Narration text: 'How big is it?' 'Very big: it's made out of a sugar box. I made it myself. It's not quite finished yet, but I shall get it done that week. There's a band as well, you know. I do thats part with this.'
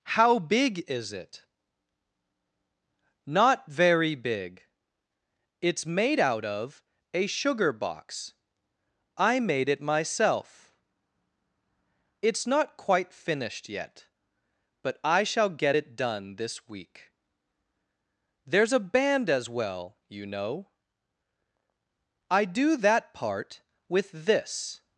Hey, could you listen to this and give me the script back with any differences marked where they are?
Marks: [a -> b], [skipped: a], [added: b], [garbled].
'How big is it?' [added: Not] 'Very big: it's made out of a sugar box. I made it myself. It's not quite finished yet, but I shall get it done [that -> this] week. There's a band as well, you know. I do [thats -> that] part with this.'